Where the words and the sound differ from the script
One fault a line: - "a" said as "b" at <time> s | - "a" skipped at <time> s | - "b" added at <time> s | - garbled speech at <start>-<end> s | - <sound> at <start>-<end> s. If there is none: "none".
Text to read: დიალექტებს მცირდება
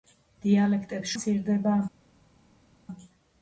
none